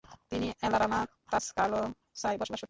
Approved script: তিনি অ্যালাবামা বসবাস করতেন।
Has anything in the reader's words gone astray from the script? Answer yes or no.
yes